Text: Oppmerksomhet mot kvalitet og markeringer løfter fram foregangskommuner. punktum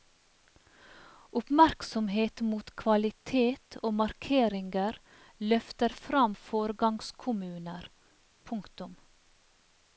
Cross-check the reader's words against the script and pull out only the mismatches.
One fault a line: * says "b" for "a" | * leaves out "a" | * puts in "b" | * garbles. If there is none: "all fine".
all fine